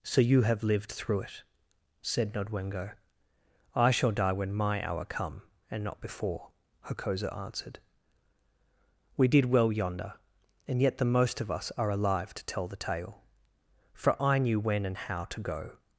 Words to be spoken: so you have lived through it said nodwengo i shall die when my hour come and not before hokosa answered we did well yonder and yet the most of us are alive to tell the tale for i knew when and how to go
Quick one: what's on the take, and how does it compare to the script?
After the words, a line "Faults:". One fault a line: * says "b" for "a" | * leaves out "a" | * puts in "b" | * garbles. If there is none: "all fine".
so you have lived through it said nodwengo i shall die when my hour come and not before hokosa answered we did well yonder and yet the most of us are alive to tell the tale for i knew when and how to go
Faults:
all fine